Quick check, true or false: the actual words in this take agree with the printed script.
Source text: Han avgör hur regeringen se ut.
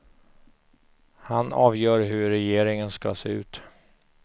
false